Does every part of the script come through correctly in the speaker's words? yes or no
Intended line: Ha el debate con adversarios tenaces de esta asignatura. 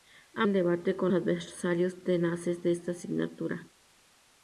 yes